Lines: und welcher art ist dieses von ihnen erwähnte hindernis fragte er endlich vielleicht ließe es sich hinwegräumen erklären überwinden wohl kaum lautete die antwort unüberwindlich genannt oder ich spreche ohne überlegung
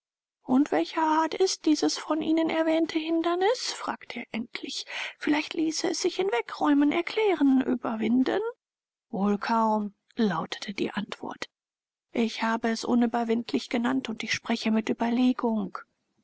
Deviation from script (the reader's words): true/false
true